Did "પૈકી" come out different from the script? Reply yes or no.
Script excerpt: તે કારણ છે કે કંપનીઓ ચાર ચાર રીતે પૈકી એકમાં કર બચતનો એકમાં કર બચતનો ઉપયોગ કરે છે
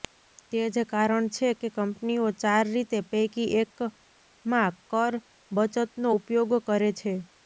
no